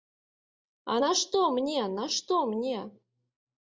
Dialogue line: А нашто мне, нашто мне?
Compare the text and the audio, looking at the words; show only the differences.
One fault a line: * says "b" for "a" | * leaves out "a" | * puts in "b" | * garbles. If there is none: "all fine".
all fine